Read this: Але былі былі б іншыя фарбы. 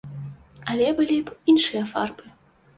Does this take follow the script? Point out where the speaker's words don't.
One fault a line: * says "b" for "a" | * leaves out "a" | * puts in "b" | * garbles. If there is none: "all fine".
* leaves out "былі"